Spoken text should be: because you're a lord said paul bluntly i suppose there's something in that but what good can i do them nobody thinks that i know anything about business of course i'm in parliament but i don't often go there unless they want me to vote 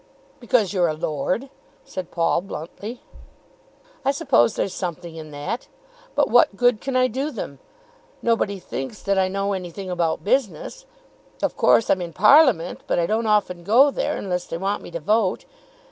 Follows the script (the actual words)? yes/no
yes